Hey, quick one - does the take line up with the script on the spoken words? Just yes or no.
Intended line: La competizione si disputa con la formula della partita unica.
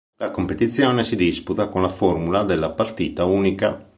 yes